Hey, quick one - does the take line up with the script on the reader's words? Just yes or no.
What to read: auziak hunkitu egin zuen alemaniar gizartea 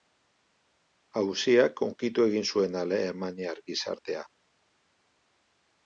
yes